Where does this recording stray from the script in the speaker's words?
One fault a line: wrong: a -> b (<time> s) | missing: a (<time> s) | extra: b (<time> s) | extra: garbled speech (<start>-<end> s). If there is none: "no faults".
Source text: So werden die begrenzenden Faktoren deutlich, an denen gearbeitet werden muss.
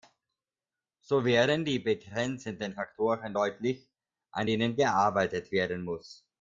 no faults